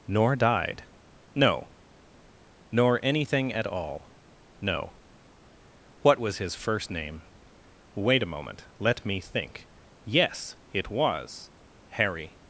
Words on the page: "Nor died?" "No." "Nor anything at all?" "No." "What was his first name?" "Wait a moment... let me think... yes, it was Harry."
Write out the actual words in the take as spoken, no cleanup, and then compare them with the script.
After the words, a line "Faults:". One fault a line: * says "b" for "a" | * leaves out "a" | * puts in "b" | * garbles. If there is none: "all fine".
"Nor died?" "No." "Nor anything at all?" "No." "What was his first name?" "Wait a moment... let me think... yes, it was Harry."
Faults:
all fine